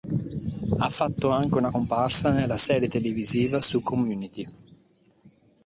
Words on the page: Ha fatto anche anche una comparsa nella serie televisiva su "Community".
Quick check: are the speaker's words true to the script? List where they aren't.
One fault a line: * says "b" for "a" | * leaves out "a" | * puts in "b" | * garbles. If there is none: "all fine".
* leaves out "anche"